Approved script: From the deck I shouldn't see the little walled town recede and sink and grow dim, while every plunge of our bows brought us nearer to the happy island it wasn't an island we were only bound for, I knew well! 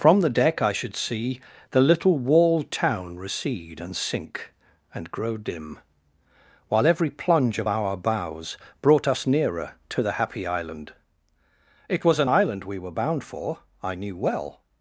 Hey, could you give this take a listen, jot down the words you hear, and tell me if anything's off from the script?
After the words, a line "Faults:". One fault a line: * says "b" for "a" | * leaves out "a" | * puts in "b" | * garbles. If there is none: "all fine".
From the deck I should see the little walled town recede and sink and grow dim, while every plunge of our bows brought us nearer to the happy island it was an island we were bound for, I knew well!
Faults:
* says "should" for "shouldn't"
* says "was" for "wasn't"
* leaves out "only"